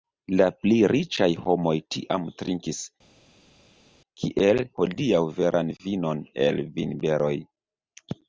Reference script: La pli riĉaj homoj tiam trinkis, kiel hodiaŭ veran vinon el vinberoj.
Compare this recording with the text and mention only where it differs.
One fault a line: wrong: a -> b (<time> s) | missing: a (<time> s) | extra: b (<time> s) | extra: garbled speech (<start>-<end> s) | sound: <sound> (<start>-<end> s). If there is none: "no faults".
no faults